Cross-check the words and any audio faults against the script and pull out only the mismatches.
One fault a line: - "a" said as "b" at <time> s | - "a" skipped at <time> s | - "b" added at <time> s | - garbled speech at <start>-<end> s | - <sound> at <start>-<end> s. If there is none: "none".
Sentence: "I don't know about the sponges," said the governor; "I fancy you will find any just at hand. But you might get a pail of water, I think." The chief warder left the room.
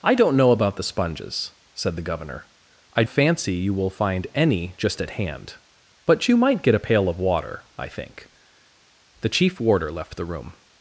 none